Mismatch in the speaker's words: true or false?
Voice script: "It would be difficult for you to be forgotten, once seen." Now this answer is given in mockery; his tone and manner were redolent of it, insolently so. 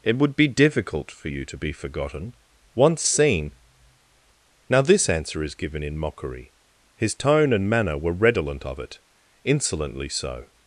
false